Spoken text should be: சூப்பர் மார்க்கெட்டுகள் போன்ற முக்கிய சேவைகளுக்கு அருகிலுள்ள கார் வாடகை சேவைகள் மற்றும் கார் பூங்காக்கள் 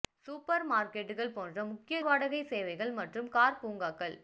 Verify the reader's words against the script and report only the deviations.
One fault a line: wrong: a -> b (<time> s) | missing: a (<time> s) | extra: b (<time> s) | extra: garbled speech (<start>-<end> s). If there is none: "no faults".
missing: சேவைகளுக்கு அருகிலுள்ள கார் (2.0 s)